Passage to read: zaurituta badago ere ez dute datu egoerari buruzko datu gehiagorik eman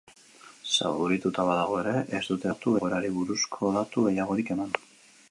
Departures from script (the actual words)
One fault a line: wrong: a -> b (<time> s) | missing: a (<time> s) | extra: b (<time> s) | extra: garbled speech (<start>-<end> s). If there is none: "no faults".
no faults